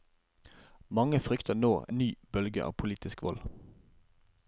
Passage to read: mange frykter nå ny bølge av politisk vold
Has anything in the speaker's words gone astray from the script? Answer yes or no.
no